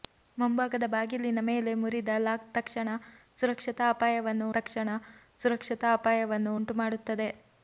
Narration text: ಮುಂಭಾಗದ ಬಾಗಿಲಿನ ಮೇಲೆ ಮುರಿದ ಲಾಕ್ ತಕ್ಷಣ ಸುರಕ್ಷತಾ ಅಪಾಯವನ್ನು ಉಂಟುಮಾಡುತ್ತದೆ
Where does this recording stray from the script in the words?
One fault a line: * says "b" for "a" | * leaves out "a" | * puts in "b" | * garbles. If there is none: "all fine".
* puts in "ತಕ್ಷಣ ಸುರಕ್ಷತಾ ಅಪಾಯವನ್ನು"